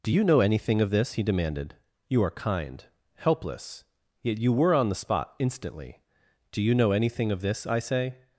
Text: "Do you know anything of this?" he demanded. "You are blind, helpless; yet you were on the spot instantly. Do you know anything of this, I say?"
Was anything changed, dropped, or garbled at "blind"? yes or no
yes